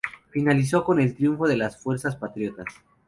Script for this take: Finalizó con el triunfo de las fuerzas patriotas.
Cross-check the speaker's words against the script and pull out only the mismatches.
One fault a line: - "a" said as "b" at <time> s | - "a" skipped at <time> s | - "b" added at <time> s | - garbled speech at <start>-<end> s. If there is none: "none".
none